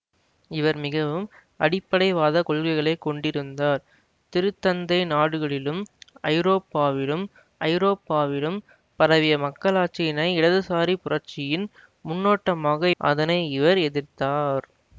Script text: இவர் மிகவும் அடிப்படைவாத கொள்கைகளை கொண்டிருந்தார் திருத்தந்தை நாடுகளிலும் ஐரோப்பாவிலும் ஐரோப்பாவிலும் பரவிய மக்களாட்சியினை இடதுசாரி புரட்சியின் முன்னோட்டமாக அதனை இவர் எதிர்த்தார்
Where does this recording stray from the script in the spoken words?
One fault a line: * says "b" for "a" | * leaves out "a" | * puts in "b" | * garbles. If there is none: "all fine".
all fine